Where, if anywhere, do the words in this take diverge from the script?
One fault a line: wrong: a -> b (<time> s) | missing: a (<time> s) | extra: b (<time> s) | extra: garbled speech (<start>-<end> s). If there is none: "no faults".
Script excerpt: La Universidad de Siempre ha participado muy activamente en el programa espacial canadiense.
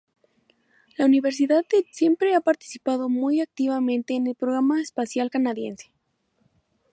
no faults